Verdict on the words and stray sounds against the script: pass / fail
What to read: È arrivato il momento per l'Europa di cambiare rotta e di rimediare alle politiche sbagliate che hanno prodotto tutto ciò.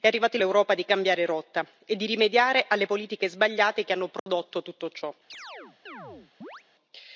fail